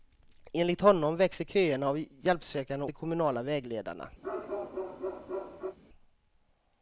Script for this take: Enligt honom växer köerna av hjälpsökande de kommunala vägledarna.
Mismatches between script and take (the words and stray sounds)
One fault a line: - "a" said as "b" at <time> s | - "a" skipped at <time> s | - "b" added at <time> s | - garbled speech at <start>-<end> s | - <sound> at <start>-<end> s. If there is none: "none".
- bark at 4.2-5.8 s